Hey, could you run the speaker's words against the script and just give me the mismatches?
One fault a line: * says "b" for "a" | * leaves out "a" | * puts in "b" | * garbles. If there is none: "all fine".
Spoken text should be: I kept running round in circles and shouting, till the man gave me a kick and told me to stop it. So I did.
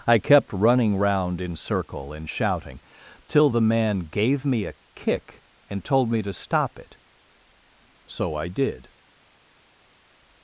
* says "circle" for "circles"